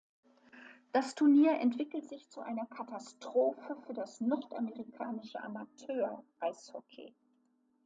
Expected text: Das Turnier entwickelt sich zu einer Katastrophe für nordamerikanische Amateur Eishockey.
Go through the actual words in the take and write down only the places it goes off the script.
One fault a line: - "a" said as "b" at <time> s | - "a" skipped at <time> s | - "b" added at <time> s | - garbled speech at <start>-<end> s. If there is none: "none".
- "das" added at 3.9 s